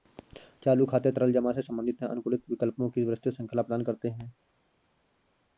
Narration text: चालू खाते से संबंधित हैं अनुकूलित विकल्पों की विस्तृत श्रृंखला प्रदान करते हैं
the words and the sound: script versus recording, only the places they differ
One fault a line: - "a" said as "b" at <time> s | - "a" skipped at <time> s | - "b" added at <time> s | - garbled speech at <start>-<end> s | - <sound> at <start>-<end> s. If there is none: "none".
- "तरल जमा" added at 1.1 s